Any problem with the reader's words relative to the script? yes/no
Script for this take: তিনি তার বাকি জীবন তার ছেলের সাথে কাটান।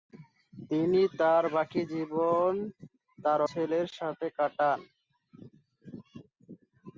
no